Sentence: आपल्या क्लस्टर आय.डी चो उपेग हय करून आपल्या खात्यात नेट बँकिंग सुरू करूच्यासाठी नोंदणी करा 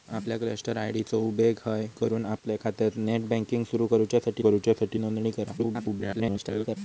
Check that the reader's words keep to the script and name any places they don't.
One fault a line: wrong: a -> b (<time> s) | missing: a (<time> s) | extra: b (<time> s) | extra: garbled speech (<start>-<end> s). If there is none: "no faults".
extra: करूच्यासाठी (4.4 s)
extra: garbled speech (5.6-6.8 s)